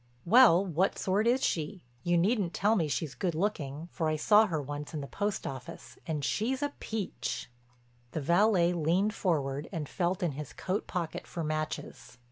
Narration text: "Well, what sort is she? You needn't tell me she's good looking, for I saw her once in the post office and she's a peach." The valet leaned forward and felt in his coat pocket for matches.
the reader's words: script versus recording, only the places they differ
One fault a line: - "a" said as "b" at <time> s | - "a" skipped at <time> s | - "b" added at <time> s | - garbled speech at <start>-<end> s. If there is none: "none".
none